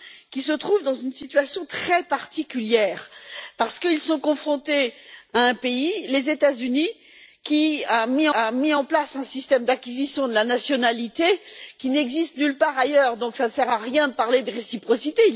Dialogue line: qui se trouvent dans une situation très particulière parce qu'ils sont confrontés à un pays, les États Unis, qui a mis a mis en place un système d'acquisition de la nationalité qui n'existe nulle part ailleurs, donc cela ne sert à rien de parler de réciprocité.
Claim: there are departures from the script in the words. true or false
false